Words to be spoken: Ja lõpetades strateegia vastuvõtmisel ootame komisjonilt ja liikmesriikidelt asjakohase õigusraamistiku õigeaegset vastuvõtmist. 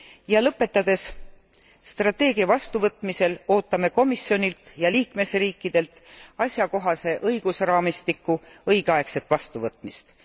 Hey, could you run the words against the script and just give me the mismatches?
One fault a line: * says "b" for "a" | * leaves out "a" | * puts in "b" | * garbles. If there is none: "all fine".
all fine